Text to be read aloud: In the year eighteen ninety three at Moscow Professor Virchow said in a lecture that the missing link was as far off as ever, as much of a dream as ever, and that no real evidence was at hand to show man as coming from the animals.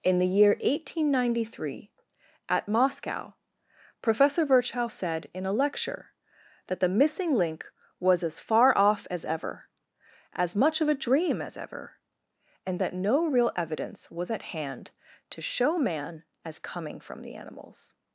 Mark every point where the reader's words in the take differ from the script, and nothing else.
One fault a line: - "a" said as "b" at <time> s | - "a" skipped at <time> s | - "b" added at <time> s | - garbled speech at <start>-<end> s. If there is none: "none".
none